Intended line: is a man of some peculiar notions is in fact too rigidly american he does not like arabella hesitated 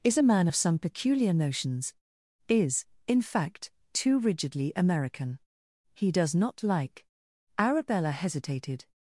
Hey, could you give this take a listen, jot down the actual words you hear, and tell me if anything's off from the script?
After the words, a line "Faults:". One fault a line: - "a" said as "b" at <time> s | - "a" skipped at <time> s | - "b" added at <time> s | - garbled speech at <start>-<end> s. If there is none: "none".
is a man of some peculiar notions is in fact too rigidly american he does not like arabella hesitated
Faults:
none